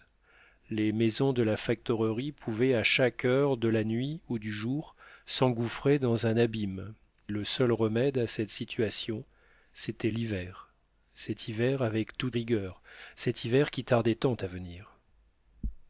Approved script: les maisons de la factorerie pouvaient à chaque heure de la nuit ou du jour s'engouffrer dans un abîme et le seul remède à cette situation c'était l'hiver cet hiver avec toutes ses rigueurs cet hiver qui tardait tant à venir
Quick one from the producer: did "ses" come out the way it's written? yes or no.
no